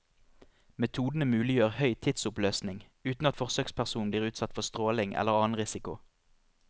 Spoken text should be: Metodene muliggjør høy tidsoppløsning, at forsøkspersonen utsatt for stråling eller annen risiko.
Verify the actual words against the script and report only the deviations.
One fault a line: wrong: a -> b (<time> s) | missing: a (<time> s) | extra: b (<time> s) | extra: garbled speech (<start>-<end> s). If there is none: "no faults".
extra: uten (3.1 s)
extra: blir (4.1 s)